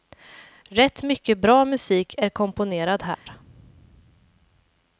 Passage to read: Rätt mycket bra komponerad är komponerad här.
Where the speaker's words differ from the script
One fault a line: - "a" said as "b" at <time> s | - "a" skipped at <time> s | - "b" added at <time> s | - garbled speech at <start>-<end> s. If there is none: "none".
- "komponerad" said as "musik" at 1.6 s